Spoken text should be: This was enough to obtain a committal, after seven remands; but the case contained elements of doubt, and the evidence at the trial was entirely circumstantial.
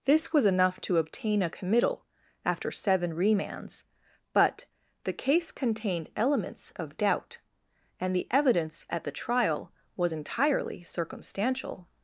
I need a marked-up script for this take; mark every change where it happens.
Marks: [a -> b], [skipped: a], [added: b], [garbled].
This was enough to obtain a committal, after seven remands; but the case contained elements of doubt, and the evidence at the trial was entirely circumstantial.